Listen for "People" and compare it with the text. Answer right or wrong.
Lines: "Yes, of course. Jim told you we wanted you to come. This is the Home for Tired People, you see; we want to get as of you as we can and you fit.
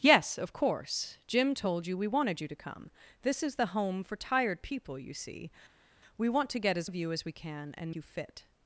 right